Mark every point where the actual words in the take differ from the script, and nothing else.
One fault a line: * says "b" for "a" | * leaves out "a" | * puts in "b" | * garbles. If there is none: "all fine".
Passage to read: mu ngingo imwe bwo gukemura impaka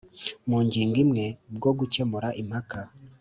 all fine